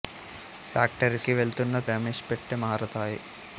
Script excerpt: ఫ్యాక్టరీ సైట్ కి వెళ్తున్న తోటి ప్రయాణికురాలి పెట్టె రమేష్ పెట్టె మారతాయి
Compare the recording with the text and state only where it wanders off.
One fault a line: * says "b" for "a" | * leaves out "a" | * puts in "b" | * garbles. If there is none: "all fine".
* leaves out "సైట్"
* leaves out "తోటి ప్రయాణికురాలి పెట్టె"